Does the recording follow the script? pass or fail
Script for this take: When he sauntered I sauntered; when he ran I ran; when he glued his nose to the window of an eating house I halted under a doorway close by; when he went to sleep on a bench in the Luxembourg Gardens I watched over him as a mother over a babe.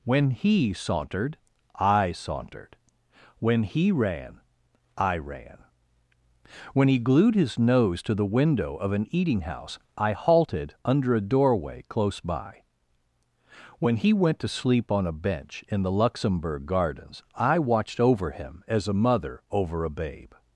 pass